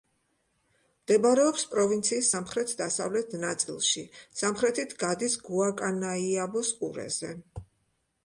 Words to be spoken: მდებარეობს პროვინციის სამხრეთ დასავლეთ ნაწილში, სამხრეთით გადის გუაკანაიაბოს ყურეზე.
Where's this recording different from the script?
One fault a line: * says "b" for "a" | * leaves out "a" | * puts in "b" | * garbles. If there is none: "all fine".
all fine